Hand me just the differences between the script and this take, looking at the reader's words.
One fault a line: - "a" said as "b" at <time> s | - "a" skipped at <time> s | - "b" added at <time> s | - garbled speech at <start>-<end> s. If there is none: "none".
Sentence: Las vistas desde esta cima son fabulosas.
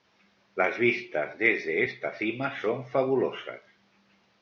none